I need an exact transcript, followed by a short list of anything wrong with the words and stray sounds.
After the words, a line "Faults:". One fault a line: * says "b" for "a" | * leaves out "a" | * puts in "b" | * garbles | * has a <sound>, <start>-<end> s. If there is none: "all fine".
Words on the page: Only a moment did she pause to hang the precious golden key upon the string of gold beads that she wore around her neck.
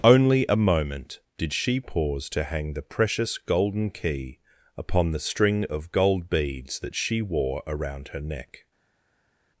Only a moment did she pause to hang the precious golden key upon the string of gold beads that she wore around her neck.
Faults:
all fine